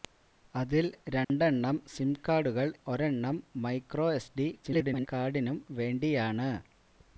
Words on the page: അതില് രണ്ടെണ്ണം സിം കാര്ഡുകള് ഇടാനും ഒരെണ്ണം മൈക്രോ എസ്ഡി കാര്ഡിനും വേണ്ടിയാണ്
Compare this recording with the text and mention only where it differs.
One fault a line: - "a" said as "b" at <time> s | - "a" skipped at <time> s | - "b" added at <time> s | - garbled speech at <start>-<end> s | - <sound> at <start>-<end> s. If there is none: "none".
- dropout at 1.2-1.3 s
- "ഇടാനും" skipped at 2.7 s
- garbled speech at 4.6-5.1 s